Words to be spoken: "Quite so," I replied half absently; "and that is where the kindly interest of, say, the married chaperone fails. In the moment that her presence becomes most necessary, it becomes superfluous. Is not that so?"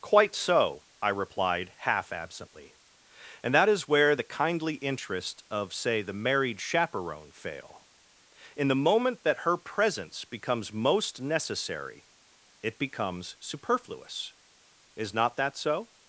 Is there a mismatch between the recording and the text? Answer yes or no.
yes